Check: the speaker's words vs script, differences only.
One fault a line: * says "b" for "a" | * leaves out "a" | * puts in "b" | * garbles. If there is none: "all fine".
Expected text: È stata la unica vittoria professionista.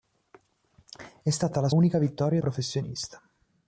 all fine